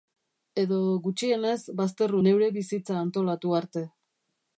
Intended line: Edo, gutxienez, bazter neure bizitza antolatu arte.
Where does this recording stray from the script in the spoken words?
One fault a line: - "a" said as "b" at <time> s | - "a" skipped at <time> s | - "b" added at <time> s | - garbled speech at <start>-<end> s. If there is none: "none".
none